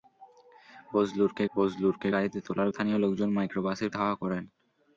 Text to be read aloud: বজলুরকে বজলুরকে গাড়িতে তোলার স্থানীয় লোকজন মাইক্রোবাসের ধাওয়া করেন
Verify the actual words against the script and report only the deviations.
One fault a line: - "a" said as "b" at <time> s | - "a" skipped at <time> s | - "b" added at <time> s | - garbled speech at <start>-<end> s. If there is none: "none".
none